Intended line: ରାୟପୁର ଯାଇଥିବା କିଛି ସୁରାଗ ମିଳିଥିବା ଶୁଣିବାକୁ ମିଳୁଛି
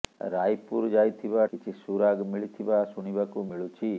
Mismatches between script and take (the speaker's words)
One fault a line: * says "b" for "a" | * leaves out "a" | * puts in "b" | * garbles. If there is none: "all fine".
all fine